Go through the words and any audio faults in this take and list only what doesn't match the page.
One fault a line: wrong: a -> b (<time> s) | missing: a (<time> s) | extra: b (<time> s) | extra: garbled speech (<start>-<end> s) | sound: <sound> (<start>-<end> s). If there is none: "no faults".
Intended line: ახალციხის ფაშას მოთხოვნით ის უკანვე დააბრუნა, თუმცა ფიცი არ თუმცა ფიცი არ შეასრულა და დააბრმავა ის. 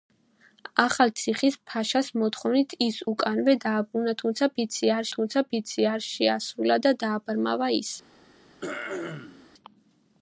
sound: throat clearing (8.6-9.5 s)